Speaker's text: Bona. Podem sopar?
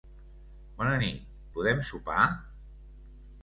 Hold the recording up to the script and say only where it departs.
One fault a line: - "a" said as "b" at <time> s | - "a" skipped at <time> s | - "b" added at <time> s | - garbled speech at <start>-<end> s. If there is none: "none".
- "nit" added at 1.0 s